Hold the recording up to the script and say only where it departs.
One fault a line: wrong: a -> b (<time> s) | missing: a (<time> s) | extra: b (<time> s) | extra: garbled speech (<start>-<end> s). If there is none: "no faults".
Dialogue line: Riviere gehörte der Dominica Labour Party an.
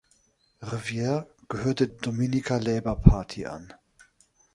missing: der (1.9 s)